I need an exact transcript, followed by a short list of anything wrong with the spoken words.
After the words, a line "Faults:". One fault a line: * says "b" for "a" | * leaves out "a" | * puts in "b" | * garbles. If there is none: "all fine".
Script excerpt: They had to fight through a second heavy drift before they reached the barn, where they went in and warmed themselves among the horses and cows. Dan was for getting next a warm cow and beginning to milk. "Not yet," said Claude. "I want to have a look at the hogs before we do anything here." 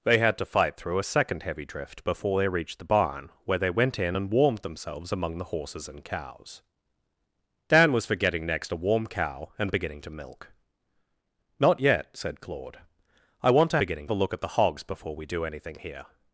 They had to fight through a second heavy drift before they reached the barn, where they went in and warmed themselves among the horses and cows. Dan was for getting next a warm cow and beginning to milk. "Not yet," said Claude. "I want to beginning a look at the hogs before we do anything here."
Faults:
* says "beginning" for "have"